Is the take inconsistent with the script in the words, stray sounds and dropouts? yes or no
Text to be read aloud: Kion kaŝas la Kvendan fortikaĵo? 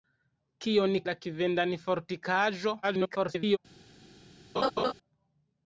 yes